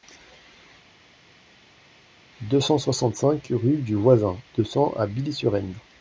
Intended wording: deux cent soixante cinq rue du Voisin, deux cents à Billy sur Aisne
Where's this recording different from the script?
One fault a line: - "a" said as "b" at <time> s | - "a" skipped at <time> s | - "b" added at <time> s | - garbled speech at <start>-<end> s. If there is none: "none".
none